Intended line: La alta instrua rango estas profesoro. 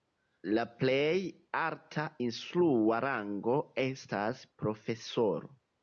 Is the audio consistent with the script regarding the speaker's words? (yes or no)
no